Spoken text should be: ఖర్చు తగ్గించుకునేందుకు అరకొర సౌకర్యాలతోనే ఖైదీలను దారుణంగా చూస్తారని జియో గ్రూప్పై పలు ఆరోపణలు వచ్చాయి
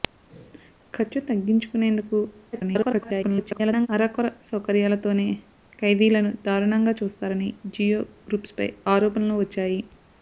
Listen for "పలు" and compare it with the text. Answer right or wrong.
wrong